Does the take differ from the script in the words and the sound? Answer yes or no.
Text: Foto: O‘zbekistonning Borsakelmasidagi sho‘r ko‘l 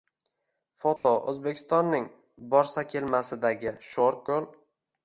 yes